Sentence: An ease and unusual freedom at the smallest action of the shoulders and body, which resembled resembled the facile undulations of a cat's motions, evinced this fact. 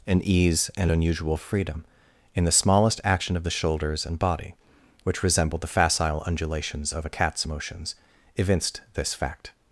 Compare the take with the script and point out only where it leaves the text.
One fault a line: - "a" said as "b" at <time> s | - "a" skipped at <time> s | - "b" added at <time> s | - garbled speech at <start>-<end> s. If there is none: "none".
- "at" said as "in" at 2.3 s
- "resembled" skipped at 5.6 s